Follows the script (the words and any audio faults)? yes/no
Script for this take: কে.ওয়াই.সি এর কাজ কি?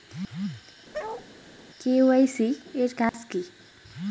no